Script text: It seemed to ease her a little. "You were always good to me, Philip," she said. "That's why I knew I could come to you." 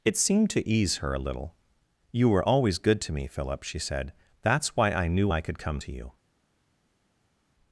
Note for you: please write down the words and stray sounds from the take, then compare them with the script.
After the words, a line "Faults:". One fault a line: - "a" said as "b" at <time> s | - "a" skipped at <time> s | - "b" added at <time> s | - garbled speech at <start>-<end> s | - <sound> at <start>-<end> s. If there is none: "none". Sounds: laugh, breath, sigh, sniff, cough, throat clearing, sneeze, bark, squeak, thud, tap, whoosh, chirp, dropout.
It seemed to ease her a little. "You were always good to me, Philip," she said. "That's why I knew I could come to you."
Faults:
none